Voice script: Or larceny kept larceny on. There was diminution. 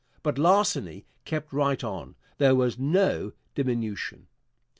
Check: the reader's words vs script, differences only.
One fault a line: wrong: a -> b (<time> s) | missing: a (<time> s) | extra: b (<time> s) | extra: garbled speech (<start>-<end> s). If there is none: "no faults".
wrong: Or -> But (0.2 s)
wrong: larceny -> right (1.5 s)
extra: no (2.8 s)